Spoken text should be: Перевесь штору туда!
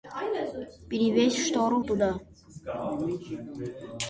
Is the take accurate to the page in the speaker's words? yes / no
yes